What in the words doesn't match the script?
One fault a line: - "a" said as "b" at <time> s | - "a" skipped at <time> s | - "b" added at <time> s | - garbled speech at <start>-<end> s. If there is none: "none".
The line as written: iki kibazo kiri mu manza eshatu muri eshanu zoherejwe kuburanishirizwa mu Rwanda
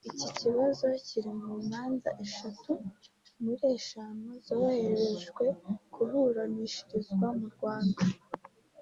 none